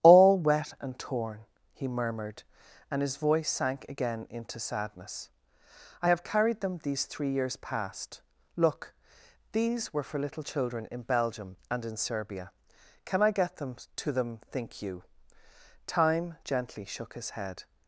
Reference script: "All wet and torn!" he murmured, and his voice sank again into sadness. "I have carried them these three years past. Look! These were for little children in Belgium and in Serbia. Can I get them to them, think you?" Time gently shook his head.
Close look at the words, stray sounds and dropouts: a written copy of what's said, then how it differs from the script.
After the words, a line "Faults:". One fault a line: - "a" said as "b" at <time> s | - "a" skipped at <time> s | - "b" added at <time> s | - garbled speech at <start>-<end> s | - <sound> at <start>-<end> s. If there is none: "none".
"All wet and torn!" he murmured, and his voice sank again into sadness. "I have carried them these three years past. Look! These were for little children in Belgium and in Serbia. Can I get them to them, think you?" Time gently shook his head.
Faults:
none